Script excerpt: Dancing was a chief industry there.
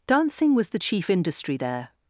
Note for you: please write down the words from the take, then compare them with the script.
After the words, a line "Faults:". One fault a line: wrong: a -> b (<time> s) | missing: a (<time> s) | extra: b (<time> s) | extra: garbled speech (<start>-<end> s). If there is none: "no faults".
Dancing was the chief industry there.
Faults:
wrong: a -> the (0.7 s)